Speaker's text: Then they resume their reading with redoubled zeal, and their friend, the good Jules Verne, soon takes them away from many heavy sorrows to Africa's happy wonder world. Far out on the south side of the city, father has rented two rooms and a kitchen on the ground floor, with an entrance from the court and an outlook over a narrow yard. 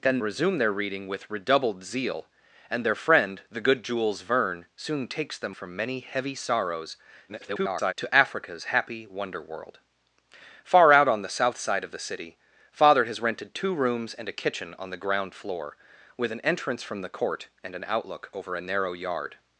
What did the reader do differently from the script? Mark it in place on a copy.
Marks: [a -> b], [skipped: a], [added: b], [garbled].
Then [skipped: they] resume their reading with redoubled zeal, and their friend, the good Jules Verne, soon takes them [skipped: away] from many heavy sorrows [garbled] to Africa's happy wonder world. Far out on the south side of the city, father has rented two rooms and a kitchen on the ground floor, with an entrance from the court and an outlook over a narrow yard.